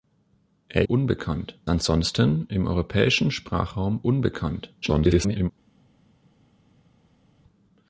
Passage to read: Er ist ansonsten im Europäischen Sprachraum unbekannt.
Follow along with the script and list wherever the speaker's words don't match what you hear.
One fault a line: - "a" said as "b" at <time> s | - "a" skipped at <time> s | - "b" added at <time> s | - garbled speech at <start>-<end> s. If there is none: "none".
- "ist" said as "unbekannt" at 0.8 s
- garbled speech at 4.8-5.5 s